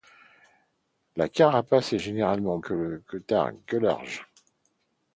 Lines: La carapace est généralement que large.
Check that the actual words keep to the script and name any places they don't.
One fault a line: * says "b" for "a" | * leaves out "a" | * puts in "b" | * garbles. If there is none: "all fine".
all fine